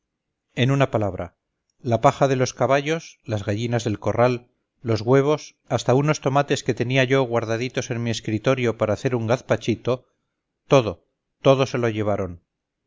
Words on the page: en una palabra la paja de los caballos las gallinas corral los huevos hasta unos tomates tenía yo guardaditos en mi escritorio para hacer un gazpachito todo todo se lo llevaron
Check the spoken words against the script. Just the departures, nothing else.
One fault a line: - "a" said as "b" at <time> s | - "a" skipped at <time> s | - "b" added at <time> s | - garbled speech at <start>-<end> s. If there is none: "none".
- "del" added at 3.8 s
- "que" added at 6.6 s